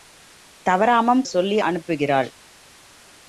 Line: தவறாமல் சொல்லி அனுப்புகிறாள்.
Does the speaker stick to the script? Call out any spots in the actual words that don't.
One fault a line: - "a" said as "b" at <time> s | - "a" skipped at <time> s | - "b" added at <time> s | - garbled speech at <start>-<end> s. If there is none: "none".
none